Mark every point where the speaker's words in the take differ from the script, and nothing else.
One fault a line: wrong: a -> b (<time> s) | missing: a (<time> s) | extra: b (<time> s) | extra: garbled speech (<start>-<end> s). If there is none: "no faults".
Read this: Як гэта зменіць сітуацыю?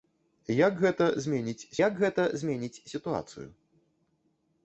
extra: як гэта зменіць (1.9 s)